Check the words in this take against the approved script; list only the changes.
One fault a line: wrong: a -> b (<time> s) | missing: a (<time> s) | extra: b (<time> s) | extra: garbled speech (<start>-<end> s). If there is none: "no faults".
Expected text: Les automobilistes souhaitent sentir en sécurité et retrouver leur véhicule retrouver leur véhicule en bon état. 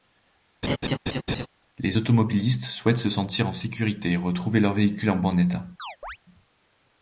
extra: se (3.0 s)
missing: retrouver leur véhicule (5.1 s)